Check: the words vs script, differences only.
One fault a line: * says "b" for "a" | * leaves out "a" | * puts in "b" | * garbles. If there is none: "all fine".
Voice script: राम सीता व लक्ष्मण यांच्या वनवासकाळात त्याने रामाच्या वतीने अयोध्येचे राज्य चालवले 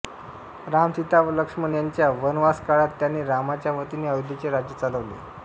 all fine